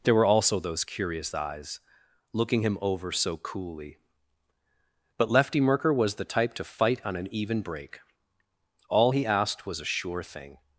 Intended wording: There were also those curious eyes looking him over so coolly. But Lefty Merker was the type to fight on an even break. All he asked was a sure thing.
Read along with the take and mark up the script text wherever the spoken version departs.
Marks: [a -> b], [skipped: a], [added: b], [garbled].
There were also those curious eyes looking him over so coolly. But Lefty Merker was the type to fight on an even break. All he asked was a sure thing.